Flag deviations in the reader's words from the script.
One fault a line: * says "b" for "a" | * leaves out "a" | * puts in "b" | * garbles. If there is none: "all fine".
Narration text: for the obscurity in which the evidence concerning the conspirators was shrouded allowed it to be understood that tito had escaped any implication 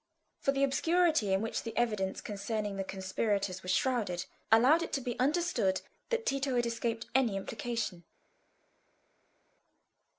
all fine